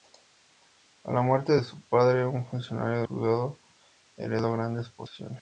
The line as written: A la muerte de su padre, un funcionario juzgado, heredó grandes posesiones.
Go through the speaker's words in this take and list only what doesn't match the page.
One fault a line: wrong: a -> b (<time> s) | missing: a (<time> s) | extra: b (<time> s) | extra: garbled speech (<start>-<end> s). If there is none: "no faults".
no faults